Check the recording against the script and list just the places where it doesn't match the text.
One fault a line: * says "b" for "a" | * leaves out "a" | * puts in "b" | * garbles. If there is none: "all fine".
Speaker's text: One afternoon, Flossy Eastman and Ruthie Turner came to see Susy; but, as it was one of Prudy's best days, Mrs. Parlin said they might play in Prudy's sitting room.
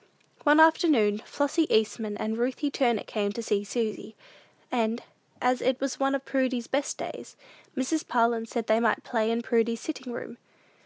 * says "and" for "but"